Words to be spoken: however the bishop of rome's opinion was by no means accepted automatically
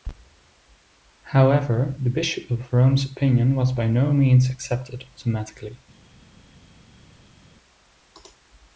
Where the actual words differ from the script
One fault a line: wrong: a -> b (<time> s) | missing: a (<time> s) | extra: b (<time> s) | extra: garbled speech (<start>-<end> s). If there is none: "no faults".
no faults